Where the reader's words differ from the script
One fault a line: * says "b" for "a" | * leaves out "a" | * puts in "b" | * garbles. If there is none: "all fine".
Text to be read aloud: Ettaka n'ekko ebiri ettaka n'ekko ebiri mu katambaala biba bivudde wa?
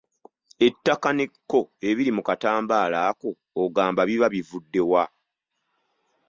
* says "mu katambaala ako ogamba" for "ettaka n'ekko ebiri mu katambaala"